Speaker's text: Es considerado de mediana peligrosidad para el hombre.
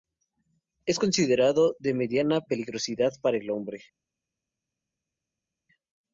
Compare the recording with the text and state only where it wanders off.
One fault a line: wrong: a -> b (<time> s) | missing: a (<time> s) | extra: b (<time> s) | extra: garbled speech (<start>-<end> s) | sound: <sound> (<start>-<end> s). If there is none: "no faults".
no faults